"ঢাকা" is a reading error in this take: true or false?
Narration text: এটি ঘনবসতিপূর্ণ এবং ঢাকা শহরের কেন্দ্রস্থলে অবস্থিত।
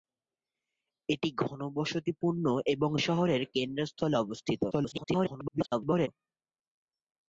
true